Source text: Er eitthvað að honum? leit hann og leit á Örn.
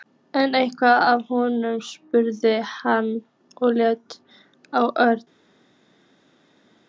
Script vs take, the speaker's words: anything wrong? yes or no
yes